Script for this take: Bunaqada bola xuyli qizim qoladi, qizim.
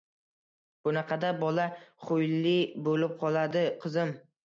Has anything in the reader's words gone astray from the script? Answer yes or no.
yes